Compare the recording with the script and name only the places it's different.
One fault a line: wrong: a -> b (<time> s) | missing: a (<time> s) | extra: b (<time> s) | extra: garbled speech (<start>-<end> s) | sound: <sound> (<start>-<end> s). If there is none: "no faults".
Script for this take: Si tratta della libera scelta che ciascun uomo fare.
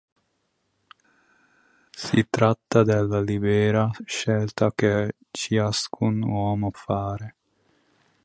no faults